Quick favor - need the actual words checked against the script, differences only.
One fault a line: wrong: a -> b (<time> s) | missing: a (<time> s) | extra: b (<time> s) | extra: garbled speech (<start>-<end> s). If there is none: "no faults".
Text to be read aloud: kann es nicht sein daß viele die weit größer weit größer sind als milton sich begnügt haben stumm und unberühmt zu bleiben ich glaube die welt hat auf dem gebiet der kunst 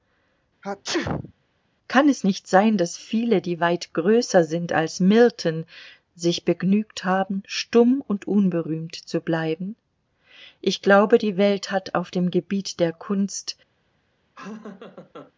missing: weit größer (4.4 s)